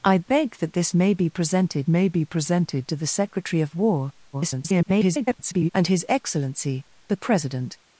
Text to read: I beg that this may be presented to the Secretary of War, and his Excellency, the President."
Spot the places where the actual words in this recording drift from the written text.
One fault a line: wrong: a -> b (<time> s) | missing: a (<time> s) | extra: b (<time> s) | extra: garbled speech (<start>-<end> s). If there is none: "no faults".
extra: may be presented (1.9 s)
extra: garbled speech (4.3-5.7 s)